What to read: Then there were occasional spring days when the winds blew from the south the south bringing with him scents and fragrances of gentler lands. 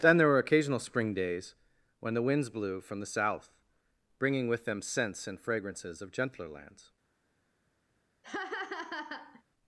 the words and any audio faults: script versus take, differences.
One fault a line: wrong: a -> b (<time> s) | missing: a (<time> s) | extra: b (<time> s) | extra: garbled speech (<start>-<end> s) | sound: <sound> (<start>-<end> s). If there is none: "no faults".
missing: the south (3.5 s)
wrong: him -> them (4.6 s)
sound: laugh (8.2-9.4 s)